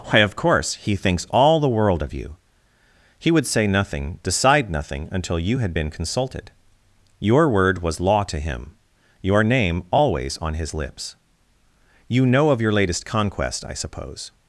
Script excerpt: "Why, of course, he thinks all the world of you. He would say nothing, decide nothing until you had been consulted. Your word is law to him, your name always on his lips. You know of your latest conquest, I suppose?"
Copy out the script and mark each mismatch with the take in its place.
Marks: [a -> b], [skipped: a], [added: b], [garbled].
"Why, of course, he thinks all the world of you. He would say nothing, decide nothing until you had been consulted. Your word [is -> was] law to him, your name always on his lips. You know of your latest conquest, I suppose?"